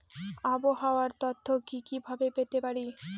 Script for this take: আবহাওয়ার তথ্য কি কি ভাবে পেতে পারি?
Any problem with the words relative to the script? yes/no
no